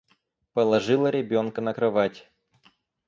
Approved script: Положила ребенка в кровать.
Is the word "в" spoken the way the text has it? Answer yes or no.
no